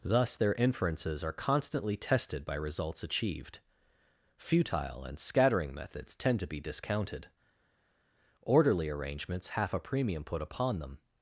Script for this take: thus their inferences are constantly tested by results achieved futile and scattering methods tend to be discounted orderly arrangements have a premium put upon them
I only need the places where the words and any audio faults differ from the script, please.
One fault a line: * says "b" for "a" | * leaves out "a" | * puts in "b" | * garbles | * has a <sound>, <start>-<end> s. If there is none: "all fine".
* says "half" for "have"